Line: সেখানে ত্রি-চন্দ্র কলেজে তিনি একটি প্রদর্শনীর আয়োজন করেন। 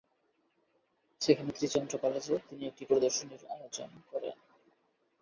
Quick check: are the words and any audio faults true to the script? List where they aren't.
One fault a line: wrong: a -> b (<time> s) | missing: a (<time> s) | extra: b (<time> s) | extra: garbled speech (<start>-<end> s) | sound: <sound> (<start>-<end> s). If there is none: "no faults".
no faults